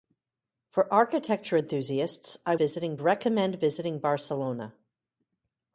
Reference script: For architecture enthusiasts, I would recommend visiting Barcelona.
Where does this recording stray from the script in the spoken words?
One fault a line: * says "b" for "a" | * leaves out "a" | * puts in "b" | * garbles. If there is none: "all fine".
* says "visiting" for "would"